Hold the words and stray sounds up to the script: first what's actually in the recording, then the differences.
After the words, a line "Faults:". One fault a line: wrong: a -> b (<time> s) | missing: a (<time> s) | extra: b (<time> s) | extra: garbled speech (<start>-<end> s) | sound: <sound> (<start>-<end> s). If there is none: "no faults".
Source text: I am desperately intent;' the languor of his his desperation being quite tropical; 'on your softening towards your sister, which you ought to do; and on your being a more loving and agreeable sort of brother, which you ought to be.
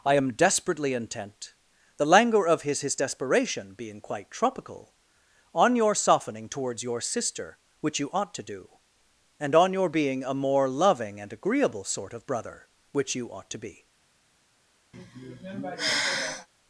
I am desperately intent;' the languor of his his desperation being quite tropical; 'on your softening towards your sister, which you ought to do; and on your being a more loving and agreeable sort of brother, which you ought to be.
Faults:
sound: sigh (14.9-16.5 s)